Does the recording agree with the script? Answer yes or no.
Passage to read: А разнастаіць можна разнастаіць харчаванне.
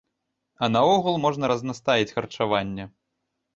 no